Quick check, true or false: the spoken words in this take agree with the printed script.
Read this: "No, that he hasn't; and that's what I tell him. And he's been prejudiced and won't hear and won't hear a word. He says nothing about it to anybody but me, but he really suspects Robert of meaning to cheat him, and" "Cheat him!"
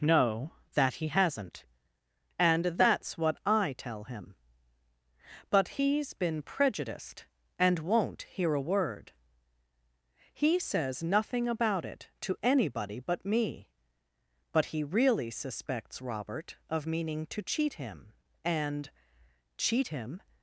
false